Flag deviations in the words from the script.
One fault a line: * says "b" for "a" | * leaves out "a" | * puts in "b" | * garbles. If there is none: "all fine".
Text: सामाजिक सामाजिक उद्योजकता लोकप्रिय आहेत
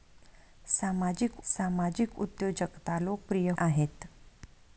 all fine